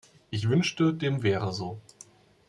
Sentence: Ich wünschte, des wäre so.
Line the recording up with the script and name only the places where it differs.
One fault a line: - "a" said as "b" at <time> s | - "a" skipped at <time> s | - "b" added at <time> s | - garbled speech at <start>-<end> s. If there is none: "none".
- "des" said as "dem" at 0.9 s